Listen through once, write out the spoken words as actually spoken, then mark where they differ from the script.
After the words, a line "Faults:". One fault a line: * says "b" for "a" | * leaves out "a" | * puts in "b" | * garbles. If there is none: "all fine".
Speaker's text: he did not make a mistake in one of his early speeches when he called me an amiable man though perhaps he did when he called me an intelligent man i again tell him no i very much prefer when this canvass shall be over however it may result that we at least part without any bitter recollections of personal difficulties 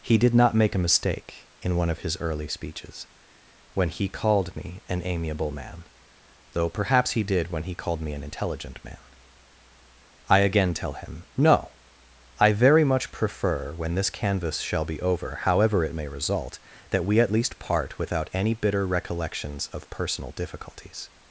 he did not make a mistake in one of his early speeches when he called me an amiable man though perhaps he did when he called me an intelligent man i again tell him no i very much prefer when this canvass shall be over however it may result that we at least part without any bitter recollections of personal difficulties
Faults:
all fine